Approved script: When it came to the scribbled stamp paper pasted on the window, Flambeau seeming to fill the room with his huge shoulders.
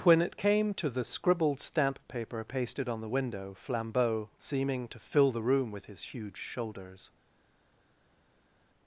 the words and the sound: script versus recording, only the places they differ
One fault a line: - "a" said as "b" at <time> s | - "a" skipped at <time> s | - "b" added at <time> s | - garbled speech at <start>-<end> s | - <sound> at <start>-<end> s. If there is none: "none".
none